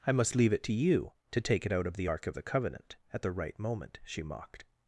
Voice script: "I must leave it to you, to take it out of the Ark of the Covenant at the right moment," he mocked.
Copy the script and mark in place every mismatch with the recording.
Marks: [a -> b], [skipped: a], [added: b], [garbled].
"I must leave it to you, to take it out of the Ark of the Covenant at the right moment," [he -> she] mocked.